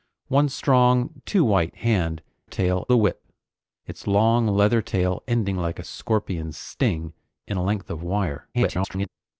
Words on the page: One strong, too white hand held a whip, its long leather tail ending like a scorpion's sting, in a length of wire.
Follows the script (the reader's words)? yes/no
no